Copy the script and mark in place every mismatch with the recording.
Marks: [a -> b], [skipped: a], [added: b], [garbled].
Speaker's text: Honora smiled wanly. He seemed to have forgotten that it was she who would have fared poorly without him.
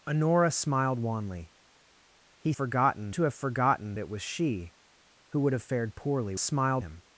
Honora smiled wanly. He [seemed -> forgotten] to have forgotten [skipped: that] it was she who would have fared poorly [without -> smiled] him.